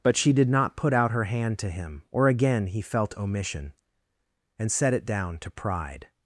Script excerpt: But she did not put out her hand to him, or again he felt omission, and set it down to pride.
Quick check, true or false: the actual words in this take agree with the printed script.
true